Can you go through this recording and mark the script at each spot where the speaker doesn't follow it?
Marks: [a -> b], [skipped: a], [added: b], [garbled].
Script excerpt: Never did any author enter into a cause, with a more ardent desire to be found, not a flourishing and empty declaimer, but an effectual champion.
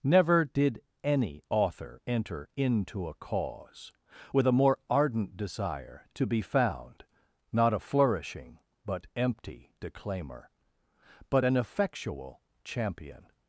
Never did any author enter into a cause, with a more ardent desire to be found, not a flourishing [and -> but] empty declaimer, but an effectual champion.